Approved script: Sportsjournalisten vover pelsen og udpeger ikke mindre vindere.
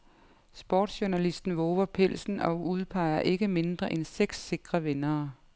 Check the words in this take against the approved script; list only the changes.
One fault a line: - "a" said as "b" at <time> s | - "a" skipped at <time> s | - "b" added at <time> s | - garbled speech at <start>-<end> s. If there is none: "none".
- "end seks sikre" added at 3.9 s